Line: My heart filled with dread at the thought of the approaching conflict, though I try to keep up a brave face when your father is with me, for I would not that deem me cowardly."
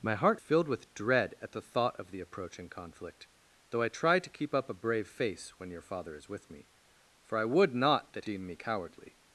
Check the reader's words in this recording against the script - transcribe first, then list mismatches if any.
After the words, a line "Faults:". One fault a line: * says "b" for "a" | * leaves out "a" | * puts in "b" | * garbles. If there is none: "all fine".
My heart filled with dread at the thought of the approaching conflict, though I try to keep up a brave face when your father is with me, for I would not that deem me cowardly."
Faults:
all fine